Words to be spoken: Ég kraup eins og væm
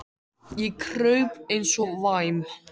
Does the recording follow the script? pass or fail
pass